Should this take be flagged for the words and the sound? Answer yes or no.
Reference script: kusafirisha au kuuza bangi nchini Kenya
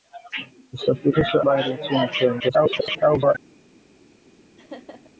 yes